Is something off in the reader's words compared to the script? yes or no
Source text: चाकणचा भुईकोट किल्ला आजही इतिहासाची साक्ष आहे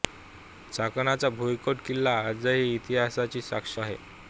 no